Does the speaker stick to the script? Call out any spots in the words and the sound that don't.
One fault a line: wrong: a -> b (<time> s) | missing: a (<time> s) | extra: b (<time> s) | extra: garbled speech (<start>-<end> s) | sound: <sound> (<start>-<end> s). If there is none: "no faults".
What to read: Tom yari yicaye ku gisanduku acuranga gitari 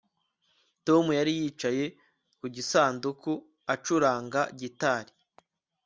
no faults